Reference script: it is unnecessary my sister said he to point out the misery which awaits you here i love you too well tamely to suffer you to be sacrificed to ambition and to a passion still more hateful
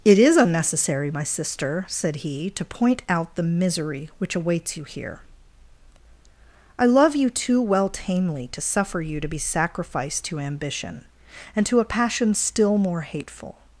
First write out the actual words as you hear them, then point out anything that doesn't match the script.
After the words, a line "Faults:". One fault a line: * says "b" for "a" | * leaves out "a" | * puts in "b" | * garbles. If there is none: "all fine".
it is unnecessary my sister said he to point out the misery which awaits you here i love you too well tamely to suffer you to be sacrificed to ambition and to a passion still more hateful
Faults:
all fine